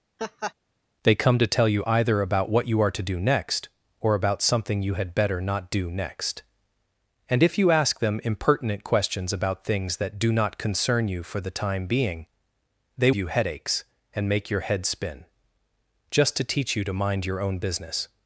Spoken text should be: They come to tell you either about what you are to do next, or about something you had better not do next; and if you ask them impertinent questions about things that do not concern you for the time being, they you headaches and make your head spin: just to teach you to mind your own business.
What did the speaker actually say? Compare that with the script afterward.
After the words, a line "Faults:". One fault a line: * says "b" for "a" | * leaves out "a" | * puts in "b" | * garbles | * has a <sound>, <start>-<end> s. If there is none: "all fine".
They come to tell you either about what you are to do next, or about something you had better not do next; and if you ask them impertinent questions about things that do not concern you for the time being, they you headaches and make your head spin: just to teach you to mind your own business.
Faults:
* has a laugh, 0.2-0.5 s